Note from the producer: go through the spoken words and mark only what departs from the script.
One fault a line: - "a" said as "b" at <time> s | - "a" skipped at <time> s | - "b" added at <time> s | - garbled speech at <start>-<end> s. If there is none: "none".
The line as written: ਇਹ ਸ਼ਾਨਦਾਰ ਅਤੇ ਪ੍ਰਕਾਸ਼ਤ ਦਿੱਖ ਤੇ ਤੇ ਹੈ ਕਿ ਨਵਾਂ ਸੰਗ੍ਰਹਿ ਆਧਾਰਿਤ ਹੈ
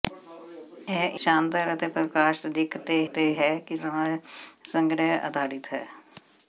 none